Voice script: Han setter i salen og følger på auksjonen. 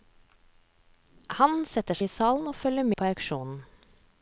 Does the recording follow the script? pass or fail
pass